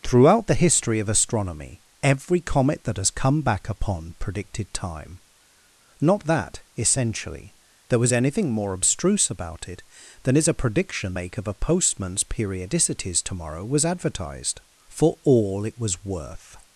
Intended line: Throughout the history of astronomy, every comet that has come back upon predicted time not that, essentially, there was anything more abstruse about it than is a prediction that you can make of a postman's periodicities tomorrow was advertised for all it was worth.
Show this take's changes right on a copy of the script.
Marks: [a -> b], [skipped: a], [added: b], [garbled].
Throughout the history of astronomy, every comet that has come back upon predicted time not that, essentially, there was anything more abstruse about it than is a prediction [skipped: that you can] make of a postman's periodicities tomorrow was advertised for all it was worth.